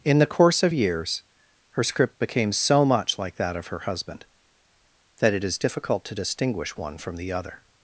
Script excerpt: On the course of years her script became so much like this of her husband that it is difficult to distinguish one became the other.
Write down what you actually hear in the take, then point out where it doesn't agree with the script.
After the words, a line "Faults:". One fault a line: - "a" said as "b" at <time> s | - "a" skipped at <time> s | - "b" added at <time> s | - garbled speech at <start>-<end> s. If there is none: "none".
In the course of years her script became so much like that of her husband that it is difficult to distinguish one from the other.
Faults:
- "On" said as "In" at 0.0 s
- "this" said as "that" at 3.4 s
- "became" said as "from" at 7.0 s